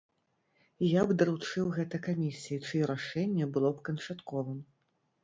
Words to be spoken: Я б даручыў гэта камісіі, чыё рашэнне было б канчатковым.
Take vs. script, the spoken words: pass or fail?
pass